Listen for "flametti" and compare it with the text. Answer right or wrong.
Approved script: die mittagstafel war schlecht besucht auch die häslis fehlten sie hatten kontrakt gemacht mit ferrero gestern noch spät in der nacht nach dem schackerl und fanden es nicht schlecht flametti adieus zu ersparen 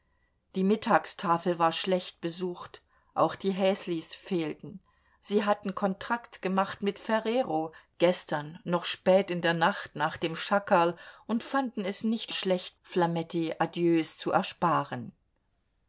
right